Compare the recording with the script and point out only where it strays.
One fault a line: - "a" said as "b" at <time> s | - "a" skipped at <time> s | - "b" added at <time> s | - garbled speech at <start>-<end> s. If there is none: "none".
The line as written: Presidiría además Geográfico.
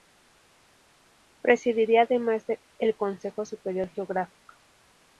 - "el Consejo Superior" added at 2.8 s